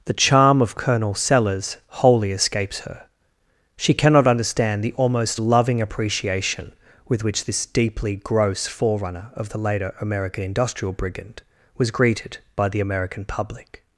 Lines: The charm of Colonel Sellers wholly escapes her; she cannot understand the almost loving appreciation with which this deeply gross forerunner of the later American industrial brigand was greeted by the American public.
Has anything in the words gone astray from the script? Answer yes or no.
no